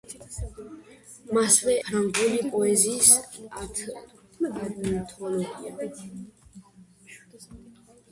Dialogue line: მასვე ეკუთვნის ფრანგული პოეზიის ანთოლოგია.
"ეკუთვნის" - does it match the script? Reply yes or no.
no